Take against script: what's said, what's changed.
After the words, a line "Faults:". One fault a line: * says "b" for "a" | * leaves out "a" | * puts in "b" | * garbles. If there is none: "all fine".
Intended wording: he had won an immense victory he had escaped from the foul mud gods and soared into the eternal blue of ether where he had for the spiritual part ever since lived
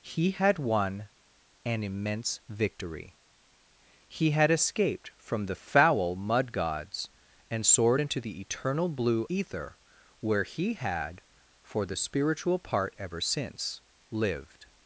he had won an immense victory he had escaped from the foul mud gods and soared into the eternal blue ether where he had for the spiritual part ever since lived
Faults:
* leaves out "of"